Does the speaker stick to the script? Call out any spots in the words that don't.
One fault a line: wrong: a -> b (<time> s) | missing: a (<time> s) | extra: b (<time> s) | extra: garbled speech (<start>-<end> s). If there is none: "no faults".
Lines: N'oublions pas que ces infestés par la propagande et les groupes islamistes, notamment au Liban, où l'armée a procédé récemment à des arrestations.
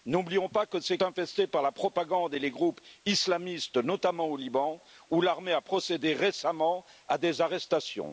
no faults